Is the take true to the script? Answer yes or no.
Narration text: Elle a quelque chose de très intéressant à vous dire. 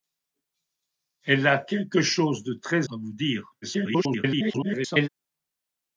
no